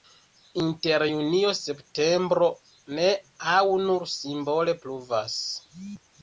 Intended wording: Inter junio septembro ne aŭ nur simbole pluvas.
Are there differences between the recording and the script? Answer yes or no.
no